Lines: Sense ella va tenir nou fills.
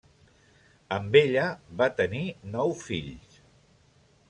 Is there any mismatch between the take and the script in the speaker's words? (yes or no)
yes